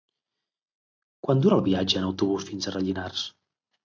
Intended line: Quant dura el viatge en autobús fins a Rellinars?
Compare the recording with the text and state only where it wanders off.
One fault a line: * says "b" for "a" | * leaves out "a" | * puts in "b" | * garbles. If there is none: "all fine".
all fine